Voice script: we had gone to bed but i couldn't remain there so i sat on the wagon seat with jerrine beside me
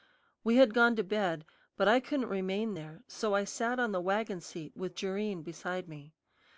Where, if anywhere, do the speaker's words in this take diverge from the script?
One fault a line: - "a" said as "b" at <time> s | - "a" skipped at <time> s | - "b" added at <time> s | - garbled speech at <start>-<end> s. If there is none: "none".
none